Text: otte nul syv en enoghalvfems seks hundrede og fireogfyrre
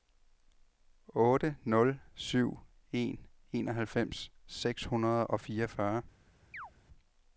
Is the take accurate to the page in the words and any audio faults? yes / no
no